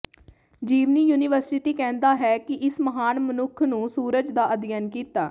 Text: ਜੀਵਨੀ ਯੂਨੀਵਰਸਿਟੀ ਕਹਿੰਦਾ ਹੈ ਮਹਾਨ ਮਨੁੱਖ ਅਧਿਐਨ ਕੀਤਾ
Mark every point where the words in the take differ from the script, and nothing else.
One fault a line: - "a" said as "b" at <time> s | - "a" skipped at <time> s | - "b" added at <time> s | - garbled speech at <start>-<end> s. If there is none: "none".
- "ਕਿ ਇਸ" added at 2.4 s
- "ਨੂੰ ਸੂਰਜ ਦਾ" added at 3.6 s